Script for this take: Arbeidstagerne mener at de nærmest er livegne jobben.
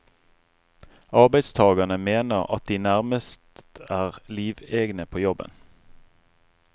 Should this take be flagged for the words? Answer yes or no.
yes